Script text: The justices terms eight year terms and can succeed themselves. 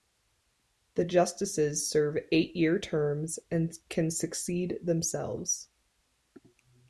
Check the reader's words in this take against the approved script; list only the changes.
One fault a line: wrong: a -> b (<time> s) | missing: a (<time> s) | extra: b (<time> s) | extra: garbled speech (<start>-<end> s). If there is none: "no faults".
wrong: terms -> serve (1.9 s)